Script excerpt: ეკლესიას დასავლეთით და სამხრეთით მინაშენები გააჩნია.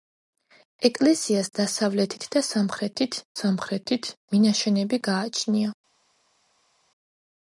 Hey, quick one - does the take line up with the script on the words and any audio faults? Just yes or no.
no